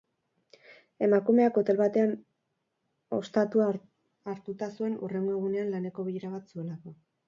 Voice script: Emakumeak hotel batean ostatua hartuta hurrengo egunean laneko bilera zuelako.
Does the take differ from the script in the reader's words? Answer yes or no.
yes